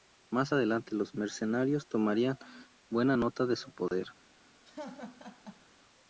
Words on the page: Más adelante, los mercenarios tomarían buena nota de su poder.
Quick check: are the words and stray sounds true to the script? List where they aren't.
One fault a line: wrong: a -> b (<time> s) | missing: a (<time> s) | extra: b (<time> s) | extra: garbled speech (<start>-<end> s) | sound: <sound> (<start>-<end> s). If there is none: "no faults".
sound: dropout (3.9-3.9 s)
sound: laugh (4.6-5.7 s)